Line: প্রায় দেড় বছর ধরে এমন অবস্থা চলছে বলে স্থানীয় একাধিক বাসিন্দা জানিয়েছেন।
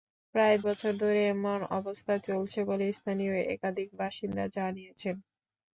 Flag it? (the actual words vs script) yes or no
yes